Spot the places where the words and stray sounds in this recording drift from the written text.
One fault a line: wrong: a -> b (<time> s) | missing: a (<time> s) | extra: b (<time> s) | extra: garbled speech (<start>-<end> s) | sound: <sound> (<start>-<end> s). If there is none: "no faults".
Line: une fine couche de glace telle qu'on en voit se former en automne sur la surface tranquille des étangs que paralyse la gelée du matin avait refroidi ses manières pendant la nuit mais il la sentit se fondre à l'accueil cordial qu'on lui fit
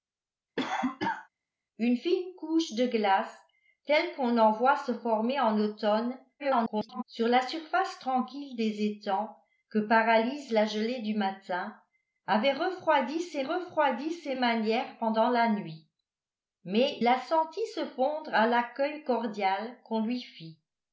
sound: cough (0.6-1.3 s)
extra: garbled speech (6.4-7.0 s)
extra: refroidi ses (13.4 s)
missing: il (17.0 s)